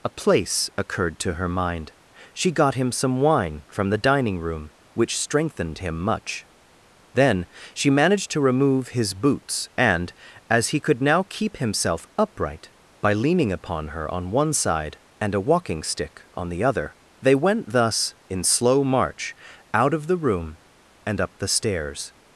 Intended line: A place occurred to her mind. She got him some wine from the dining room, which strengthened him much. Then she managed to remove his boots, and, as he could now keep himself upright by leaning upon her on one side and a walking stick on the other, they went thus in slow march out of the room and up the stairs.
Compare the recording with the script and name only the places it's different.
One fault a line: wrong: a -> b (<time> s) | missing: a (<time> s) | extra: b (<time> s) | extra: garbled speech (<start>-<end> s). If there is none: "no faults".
no faults